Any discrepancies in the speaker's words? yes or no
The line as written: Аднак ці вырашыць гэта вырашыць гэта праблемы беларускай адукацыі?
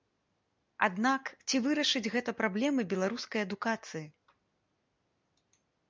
yes